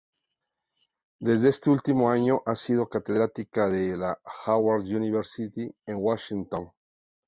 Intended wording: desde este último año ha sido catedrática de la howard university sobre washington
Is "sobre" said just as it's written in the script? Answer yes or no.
no